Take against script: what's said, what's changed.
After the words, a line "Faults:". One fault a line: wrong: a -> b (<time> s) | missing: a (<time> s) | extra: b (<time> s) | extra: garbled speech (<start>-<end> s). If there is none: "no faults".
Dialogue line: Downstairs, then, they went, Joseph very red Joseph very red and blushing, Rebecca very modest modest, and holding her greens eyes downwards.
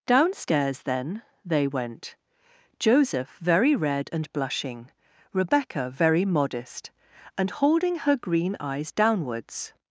Downstairs, then, they went, Joseph very red and blushing, Rebecca very modest, and holding her green eyes downwards.
Faults:
missing: Joseph very red (4.1 s)
missing: modest (6.9 s)
wrong: greens -> green (8.2 s)